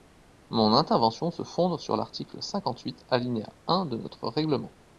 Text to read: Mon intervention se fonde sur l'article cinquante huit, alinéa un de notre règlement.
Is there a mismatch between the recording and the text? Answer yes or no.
no